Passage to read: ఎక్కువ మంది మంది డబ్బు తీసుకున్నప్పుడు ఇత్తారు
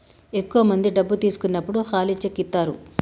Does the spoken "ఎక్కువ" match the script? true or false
true